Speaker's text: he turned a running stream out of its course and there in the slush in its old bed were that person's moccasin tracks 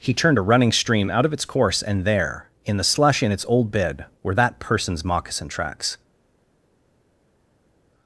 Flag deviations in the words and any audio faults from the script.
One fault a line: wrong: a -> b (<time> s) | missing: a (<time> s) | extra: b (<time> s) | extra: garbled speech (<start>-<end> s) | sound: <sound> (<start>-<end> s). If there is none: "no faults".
no faults